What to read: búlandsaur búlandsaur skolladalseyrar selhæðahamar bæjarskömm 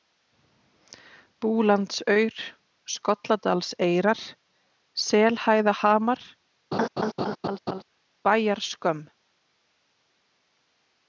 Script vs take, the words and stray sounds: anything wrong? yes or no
yes